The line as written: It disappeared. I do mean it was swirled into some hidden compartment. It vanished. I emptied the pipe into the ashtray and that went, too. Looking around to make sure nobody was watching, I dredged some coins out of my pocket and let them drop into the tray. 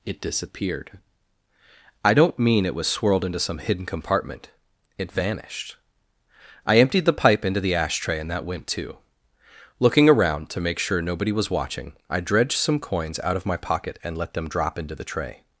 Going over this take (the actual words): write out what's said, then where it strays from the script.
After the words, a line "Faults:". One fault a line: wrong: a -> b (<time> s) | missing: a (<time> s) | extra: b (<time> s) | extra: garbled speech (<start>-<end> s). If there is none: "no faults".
It disappeared. I don't mean it was swirled into some hidden compartment. It vanished. I emptied the pipe into the ashtray and that went, too. Looking around to make sure nobody was watching, I dredged some coins out of my pocket and let them drop into the tray.
Faults:
wrong: do -> don't (2.1 s)